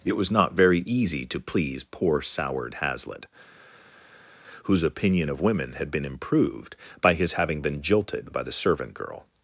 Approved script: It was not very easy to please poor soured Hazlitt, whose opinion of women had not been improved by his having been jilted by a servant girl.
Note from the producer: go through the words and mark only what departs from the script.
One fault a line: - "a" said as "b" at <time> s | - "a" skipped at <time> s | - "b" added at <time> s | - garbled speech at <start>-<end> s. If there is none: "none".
- "not" skipped at 5.9 s
- "a" said as "the" at 8.4 s